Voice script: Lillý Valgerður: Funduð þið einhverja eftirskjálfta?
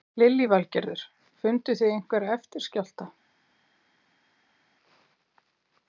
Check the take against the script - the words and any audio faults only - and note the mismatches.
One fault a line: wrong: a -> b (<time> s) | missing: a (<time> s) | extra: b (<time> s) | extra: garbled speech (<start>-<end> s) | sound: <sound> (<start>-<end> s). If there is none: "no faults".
no faults